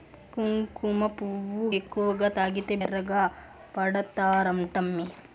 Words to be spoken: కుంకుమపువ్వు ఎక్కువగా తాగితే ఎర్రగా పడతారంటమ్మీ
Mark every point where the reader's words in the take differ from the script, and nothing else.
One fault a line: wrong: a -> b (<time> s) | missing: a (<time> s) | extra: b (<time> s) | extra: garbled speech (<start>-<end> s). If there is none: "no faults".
no faults